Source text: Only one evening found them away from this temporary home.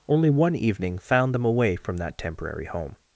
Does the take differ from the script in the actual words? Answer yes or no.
yes